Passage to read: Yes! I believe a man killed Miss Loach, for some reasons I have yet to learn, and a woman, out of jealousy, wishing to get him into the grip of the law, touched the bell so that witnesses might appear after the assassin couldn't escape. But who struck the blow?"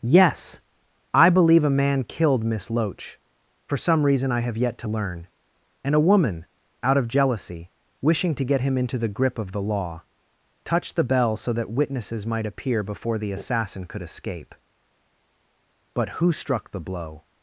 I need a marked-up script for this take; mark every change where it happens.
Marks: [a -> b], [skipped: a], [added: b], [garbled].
Yes! I believe a man killed Miss Loach, for some [reasons -> reason] I have yet to learn, and a woman, out of jealousy, wishing to get him into the grip of the law, touched the bell so that witnesses might appear [after -> before] the assassin [couldn't -> could] escape. But who struck the blow?"